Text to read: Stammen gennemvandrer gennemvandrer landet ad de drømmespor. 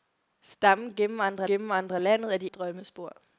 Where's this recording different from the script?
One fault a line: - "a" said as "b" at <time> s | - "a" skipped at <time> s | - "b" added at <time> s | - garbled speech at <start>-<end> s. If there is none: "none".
none